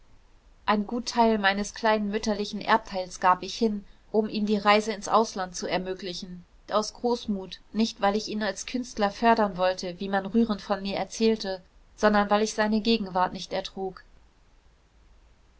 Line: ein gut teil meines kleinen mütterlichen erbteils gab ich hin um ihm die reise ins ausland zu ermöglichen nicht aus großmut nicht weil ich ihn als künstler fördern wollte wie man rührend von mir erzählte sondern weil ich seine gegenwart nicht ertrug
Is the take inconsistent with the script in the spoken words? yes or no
yes